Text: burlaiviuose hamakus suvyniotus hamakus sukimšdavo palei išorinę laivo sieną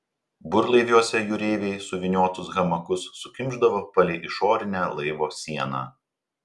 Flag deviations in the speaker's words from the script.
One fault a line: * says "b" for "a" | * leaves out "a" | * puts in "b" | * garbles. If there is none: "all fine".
* says "jūreiviai" for "hamakus"